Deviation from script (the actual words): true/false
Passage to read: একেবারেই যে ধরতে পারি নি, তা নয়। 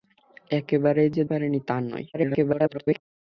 true